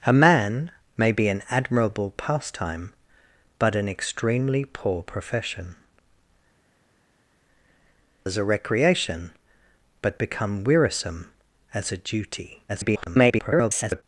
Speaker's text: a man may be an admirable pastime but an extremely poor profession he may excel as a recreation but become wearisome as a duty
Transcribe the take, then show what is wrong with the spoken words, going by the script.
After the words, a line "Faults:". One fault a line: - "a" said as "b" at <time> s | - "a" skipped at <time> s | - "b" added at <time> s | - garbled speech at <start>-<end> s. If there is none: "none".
a man may be an admirable pastime but an extremely poor profession as a recreation but become wearisome as a duty [garbled]
Faults:
- "he may excel" skipped at 5.8 s
- garbled speech at 12.7-14.0 s